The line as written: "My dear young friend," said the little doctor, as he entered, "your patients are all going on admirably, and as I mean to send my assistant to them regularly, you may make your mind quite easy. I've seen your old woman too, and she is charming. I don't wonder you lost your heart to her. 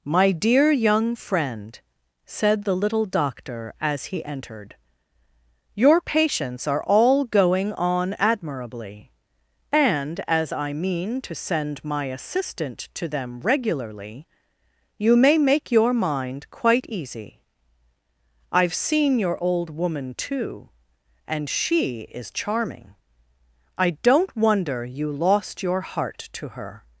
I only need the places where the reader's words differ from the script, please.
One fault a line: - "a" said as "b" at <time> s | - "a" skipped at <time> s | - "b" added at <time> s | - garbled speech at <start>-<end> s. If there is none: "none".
none